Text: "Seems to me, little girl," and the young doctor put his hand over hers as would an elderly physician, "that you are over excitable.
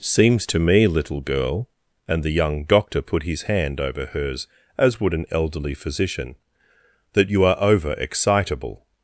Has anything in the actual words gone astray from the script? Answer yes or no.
no